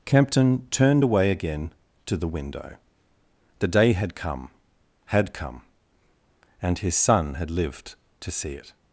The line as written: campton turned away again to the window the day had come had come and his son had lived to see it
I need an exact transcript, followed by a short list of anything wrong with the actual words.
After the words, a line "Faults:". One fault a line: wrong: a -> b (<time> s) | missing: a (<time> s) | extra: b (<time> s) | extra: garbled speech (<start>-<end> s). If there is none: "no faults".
campton turned away again to the window the day had come had come and his son had lived to see it
Faults:
no faults